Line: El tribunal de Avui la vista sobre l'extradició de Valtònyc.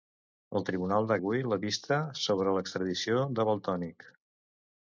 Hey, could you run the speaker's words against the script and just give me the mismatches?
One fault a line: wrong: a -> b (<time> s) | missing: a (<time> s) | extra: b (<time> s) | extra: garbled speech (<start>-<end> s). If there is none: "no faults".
no faults